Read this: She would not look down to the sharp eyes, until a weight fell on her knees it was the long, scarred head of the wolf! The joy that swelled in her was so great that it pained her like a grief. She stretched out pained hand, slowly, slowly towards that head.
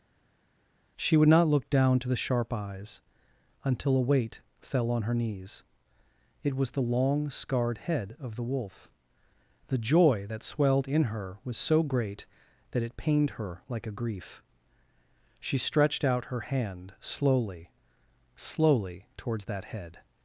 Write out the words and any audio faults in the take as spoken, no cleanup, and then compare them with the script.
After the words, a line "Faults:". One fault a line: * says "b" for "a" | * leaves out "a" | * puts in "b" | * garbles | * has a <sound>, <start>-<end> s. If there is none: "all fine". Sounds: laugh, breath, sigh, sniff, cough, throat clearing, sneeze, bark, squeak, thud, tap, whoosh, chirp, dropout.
She would not look down to the sharp eyes, until a weight fell on her knees it was the long, scarred head of the wolf! The joy that swelled in her was so great that it pained her like a grief. She stretched out her hand, slowly, slowly towards that head.
Faults:
* says "her" for "pained"